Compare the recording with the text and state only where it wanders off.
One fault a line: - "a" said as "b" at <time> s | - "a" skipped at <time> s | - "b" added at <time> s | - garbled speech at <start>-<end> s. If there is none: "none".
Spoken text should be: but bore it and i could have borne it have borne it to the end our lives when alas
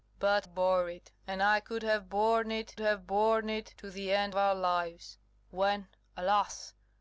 none